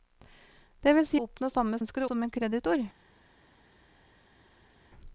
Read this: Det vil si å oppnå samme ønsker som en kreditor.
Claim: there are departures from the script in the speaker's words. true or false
false